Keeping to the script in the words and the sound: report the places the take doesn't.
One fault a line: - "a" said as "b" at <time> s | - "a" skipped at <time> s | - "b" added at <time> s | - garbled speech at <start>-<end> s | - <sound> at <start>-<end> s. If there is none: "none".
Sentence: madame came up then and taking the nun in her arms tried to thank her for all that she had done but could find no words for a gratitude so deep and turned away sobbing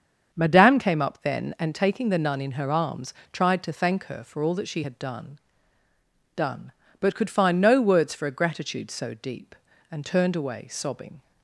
- "done" added at 6.4 s